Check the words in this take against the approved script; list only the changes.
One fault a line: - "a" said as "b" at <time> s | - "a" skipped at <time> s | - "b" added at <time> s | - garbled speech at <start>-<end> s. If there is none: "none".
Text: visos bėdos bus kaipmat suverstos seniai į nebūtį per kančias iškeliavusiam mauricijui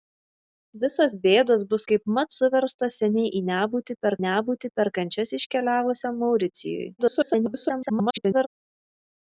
- "nebūtį per" added at 4.3 s
- garbled speech at 7.0-8.5 s